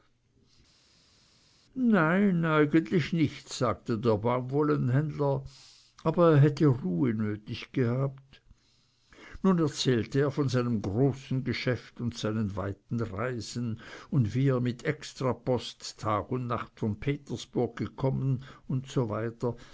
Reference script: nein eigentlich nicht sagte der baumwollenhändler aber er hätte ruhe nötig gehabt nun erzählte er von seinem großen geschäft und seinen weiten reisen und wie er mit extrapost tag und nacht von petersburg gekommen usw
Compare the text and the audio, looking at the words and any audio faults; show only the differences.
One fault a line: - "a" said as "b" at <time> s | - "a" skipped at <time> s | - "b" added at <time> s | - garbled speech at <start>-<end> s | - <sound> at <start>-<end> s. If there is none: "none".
none